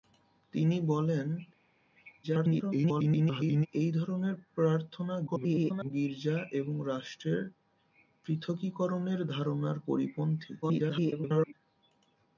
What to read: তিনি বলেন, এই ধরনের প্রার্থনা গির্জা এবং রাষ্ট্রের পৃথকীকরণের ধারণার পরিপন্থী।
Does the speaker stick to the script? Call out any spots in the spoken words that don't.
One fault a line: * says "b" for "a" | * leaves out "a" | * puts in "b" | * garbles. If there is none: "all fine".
* garbles
* garbles
* garbles